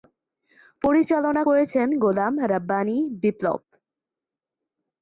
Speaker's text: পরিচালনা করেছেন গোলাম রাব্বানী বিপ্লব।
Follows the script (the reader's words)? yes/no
yes